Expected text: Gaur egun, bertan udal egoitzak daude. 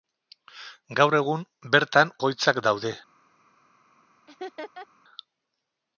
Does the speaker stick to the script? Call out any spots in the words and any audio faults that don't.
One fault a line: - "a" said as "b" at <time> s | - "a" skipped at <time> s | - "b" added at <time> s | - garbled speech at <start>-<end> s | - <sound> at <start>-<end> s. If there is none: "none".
- "udal" skipped at 2.1 s
- laugh at 4.3-4.9 s